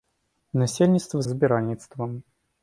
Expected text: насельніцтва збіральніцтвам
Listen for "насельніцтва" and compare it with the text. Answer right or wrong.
right